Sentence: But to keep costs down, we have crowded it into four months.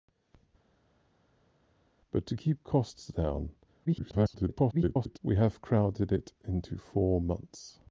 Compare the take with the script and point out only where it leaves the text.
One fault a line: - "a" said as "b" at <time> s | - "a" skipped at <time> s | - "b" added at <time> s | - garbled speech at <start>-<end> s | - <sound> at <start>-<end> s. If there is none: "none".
- garbled speech at 3.9-5.2 s